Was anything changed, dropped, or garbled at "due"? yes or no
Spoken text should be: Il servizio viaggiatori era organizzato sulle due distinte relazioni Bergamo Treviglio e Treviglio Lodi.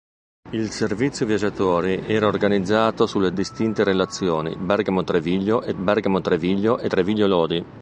yes